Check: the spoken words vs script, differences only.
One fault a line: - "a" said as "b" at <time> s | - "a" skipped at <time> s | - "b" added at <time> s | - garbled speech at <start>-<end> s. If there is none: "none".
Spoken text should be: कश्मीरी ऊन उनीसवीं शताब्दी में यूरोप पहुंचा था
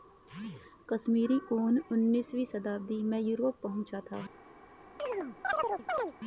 none